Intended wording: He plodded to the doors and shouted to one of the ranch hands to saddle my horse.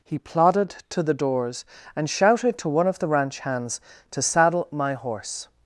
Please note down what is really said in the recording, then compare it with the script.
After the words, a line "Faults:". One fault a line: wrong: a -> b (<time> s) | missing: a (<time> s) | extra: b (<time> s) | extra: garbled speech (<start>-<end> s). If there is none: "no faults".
He plodded to the doors and shouted to one of the ranch hands to saddle my horse.
Faults:
no faults